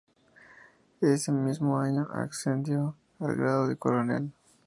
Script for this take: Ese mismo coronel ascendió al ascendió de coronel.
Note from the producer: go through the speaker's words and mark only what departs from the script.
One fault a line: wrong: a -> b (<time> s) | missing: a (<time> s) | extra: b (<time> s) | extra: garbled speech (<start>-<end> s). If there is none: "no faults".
wrong: coronel -> año (1.8 s)
wrong: ascendió -> grado (3.4 s)